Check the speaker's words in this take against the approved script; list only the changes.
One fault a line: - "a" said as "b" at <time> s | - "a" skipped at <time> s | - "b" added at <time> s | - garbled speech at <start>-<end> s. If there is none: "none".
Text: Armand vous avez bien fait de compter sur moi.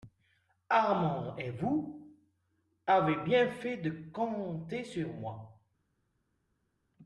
- "et" added at 1.4 s